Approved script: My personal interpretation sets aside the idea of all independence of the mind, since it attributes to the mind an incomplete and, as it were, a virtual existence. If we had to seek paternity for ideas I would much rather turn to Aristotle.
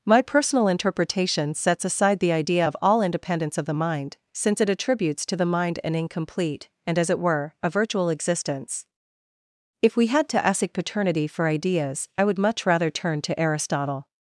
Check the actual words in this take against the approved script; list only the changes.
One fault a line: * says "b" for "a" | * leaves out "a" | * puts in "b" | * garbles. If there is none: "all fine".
* says "ask" for "seek"